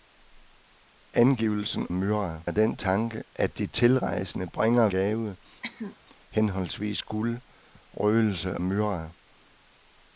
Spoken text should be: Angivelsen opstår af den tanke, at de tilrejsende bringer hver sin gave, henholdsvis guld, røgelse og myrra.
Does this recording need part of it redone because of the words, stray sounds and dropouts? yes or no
yes